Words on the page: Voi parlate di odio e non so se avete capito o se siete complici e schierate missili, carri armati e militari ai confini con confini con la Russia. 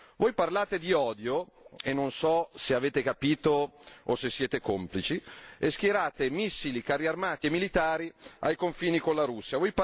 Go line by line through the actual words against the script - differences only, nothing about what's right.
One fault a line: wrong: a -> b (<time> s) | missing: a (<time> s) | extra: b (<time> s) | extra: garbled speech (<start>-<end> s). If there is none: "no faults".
missing: confini con (9.2 s)